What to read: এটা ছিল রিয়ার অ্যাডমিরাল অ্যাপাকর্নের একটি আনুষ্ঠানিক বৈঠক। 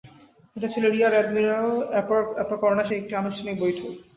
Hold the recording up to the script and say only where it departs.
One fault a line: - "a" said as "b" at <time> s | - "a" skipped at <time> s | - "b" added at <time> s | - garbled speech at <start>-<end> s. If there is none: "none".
none